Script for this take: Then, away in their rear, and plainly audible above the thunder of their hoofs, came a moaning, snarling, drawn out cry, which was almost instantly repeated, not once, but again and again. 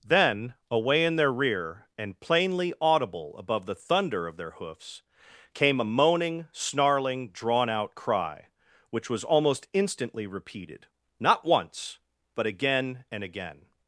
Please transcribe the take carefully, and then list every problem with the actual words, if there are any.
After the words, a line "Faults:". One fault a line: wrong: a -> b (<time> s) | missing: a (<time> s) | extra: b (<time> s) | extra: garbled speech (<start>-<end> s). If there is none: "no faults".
Then, away in their rear, and plainly audible above the thunder of their hoofs, came a moaning, snarling, drawn out cry, which was almost instantly repeated, not once, but again and again.
Faults:
no faults